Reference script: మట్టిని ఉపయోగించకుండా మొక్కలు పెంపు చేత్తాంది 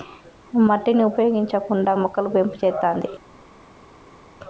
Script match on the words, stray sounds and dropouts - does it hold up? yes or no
yes